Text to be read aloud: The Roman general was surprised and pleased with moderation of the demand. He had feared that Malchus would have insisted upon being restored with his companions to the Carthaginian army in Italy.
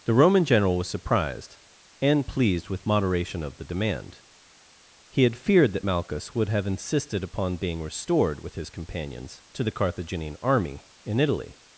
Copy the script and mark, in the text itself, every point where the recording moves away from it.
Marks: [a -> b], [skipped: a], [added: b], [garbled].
The Roman general was surprised and pleased with moderation of the demand. He had feared that Malchus would have insisted upon being restored with his companions to the Carthaginian army in Italy.